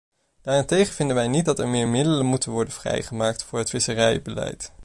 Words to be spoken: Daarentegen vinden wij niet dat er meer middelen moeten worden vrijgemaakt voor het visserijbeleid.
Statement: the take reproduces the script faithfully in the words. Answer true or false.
true